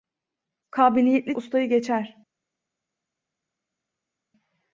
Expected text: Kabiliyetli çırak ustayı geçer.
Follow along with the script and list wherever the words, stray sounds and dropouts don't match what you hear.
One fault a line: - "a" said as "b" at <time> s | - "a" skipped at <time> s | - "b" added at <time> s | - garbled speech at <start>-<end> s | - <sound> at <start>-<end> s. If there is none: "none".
- "çırak" skipped at 1.4 s